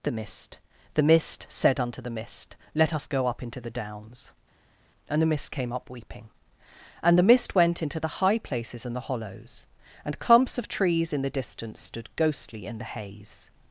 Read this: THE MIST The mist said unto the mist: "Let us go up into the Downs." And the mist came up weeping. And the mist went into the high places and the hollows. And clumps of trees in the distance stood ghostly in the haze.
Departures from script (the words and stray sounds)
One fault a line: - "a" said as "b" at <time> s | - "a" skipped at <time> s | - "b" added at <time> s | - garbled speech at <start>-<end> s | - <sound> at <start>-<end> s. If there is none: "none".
none